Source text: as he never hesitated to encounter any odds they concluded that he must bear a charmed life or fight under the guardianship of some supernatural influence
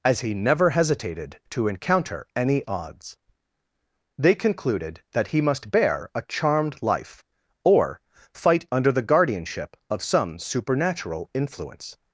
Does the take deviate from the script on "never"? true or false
false